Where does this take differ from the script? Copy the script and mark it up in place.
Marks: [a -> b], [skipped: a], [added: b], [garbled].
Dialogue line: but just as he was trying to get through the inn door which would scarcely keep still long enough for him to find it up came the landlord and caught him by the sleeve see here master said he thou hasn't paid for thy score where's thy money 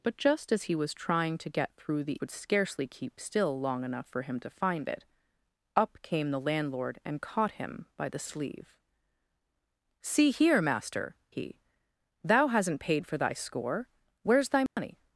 but just as he was trying to get through the [skipped: inn door which] would scarcely keep still long enough for him to find it up came the landlord and caught him by the sleeve see here master [skipped: said] he thou hasn't paid for thy score where's thy money